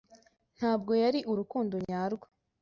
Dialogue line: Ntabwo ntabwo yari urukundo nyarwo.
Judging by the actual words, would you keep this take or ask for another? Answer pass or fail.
fail